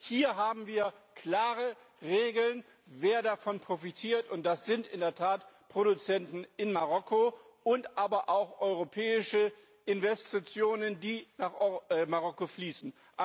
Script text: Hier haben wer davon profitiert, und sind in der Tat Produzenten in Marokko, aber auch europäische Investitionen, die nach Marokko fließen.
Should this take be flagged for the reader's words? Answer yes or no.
yes